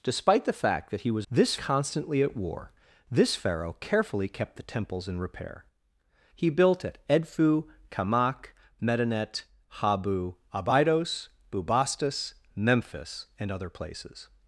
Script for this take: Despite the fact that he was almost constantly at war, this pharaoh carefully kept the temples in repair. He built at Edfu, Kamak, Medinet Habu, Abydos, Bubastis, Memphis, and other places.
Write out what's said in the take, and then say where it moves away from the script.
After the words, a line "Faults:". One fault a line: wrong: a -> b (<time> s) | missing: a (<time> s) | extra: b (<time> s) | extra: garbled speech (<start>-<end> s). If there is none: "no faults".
Despite the fact that he was this constantly at war, this pharaoh carefully kept the temples in repair. He built at Edfu, Kamak, Medinet Habu, Abydos, Bubastis, Memphis, and other places.
Faults:
wrong: almost -> this (1.3 s)